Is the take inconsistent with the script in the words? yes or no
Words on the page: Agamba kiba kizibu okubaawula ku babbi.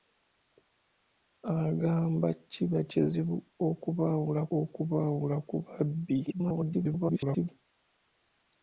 yes